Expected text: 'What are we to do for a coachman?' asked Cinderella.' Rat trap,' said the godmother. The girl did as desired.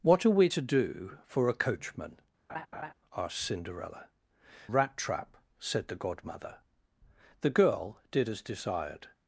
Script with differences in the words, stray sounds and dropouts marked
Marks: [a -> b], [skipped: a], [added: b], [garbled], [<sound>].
'What are we to do for a coachman?' [laugh] asked Cinderella.' Rat trap,' said the godmother. The girl did as desired.